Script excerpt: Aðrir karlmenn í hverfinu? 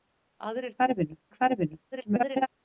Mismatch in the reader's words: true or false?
true